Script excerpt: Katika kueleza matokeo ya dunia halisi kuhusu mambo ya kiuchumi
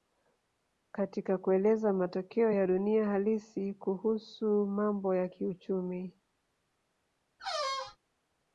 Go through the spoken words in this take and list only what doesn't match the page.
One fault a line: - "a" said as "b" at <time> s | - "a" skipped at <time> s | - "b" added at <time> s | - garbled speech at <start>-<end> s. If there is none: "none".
none